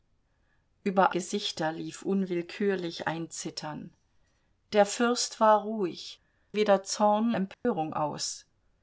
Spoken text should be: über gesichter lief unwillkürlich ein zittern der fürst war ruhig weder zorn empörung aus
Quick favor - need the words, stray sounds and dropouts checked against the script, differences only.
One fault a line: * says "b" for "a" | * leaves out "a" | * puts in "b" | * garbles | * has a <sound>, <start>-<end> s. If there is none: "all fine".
* has a dropout, 7.5-7.6 s